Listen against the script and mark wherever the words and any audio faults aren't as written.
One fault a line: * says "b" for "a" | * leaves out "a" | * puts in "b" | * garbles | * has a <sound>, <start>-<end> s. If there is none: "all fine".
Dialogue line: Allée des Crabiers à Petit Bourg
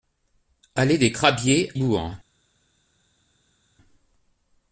* leaves out "à Petit"